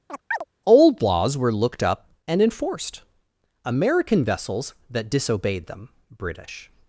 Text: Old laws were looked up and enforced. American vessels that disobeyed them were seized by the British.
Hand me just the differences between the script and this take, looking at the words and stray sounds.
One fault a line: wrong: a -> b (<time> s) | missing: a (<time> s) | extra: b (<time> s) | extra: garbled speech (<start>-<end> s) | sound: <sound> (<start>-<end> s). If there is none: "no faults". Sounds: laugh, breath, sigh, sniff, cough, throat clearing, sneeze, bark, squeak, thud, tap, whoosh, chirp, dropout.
sound: chirp (0.1-0.4 s)
missing: were seized by the (5.9 s)